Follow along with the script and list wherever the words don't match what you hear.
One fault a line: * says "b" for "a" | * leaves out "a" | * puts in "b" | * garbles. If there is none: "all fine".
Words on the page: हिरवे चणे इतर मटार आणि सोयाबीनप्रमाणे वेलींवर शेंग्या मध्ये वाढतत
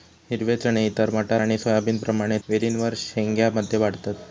all fine